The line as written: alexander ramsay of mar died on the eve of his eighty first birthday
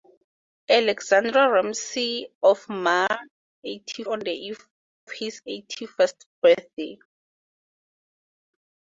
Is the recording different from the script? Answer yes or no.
yes